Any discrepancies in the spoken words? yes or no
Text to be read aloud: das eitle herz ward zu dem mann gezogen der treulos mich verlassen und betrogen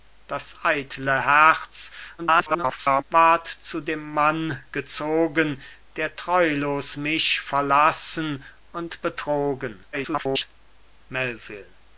yes